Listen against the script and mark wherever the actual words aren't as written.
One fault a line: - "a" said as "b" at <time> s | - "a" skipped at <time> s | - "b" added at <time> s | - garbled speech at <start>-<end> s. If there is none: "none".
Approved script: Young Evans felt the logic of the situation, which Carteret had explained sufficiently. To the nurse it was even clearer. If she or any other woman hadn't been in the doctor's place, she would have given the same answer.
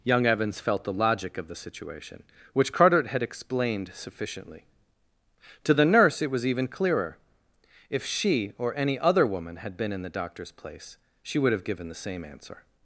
- "hadn't" said as "had" at 9.6 s